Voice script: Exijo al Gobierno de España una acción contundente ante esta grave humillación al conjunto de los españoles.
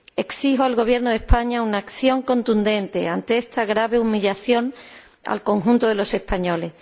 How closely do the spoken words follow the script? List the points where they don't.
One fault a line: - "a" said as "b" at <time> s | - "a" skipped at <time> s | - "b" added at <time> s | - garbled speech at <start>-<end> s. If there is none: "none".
none